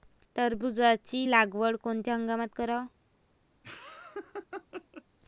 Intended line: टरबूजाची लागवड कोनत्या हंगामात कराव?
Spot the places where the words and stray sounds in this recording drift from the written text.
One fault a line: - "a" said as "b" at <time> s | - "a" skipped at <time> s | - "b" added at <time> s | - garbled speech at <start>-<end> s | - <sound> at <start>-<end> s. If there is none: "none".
- laugh at 3.6-5.0 s